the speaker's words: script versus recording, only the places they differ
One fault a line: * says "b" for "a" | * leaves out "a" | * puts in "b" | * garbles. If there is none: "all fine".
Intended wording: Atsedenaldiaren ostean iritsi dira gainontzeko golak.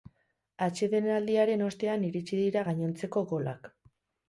all fine